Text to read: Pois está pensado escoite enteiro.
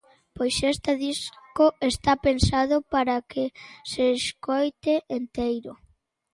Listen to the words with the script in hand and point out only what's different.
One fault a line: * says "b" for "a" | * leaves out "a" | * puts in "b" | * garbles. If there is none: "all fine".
* puts in "este disco"
* puts in "para que se"